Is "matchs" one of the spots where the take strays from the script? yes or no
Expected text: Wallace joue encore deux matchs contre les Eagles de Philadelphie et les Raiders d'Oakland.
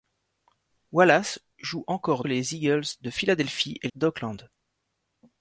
yes